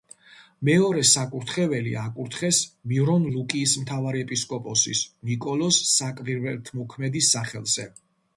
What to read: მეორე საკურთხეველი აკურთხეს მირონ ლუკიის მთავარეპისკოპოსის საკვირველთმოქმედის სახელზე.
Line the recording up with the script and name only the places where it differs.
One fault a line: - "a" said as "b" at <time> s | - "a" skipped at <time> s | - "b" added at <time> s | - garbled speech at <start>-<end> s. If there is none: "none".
- "ნიკოლოზ" added at 5.3 s